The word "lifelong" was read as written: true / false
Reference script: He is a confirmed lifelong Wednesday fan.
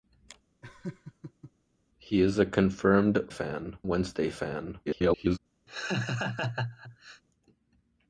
false